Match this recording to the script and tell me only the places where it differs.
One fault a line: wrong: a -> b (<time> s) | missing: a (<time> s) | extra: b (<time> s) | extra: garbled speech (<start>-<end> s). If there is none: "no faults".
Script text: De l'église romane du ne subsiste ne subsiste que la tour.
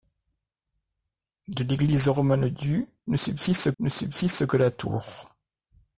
no faults